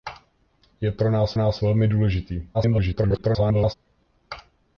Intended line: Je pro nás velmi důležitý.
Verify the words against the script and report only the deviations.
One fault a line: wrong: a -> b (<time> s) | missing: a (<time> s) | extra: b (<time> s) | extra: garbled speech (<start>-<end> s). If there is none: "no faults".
extra: nás (1.4 s)
extra: garbled speech (2.5-3.7 s)